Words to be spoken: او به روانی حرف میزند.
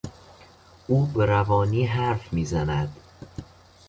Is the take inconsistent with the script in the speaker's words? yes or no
no